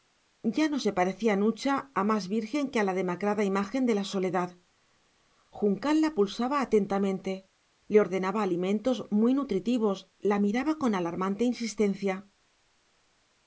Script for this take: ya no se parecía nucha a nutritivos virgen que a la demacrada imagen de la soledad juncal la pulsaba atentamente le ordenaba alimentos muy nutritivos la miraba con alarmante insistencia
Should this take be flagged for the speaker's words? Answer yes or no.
yes